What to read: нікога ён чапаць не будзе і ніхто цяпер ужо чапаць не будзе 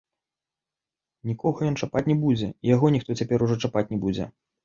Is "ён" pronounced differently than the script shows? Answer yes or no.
no